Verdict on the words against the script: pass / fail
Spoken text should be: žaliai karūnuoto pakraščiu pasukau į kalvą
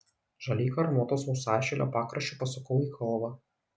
fail